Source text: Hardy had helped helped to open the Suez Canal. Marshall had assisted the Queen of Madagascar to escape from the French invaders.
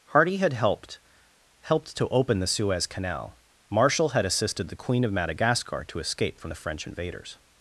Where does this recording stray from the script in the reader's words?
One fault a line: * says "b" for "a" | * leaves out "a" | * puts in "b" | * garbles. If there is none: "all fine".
all fine